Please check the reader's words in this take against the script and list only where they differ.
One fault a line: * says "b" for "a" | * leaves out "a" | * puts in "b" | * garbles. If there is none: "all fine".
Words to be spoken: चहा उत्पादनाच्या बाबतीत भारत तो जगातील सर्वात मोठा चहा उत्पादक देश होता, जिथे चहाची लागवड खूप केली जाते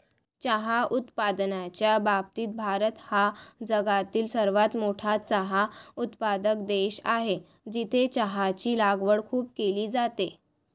* says "हा" for "तो"
* says "आहे" for "होता"